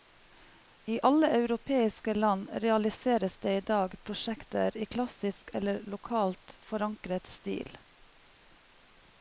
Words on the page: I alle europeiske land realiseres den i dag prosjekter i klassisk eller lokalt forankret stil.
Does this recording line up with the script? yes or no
no